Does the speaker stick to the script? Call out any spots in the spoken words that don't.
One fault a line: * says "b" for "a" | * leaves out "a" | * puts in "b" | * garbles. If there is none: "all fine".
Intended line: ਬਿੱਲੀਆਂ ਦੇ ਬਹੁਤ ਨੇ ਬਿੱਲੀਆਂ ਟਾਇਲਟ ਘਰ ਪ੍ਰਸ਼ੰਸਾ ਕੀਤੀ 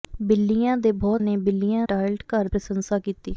all fine